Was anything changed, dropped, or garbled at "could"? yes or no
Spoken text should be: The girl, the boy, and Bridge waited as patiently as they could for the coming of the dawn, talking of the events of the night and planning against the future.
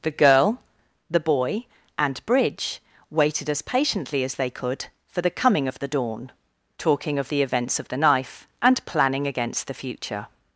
no